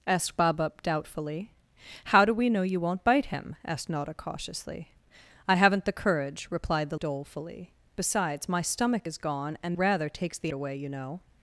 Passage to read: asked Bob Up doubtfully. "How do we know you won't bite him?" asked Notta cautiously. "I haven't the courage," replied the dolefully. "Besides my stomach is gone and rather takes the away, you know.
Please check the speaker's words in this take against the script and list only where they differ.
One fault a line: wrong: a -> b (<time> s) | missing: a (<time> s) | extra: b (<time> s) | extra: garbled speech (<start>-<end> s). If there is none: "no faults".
no faults